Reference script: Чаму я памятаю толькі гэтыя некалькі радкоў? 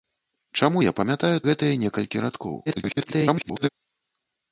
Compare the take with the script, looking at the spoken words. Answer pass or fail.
fail